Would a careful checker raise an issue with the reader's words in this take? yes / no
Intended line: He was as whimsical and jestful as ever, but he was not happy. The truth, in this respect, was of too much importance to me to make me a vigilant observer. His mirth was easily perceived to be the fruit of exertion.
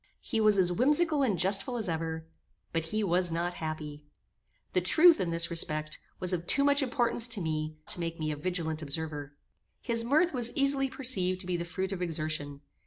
no